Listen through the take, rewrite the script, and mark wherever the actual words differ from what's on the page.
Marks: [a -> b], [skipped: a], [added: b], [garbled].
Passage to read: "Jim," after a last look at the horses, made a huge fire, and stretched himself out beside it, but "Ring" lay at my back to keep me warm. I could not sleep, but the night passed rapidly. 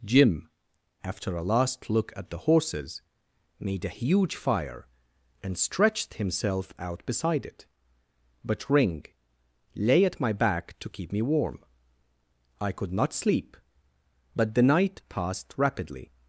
"Jim," after a last look at the horses, made a huge fire, and stretched himself out beside it, but "Ring" lay at my back to keep me warm. I could not sleep, but the night passed rapidly.